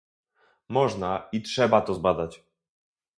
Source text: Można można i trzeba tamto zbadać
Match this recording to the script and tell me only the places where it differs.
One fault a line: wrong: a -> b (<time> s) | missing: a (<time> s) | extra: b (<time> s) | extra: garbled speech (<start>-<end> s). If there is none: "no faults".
missing: można (1.3 s)
wrong: tamto -> to (1.8 s)